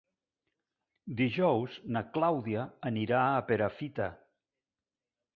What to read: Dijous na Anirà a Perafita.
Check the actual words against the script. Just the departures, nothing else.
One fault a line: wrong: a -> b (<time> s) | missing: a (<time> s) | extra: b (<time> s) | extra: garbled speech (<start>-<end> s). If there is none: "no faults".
extra: Clàudia (2.1 s)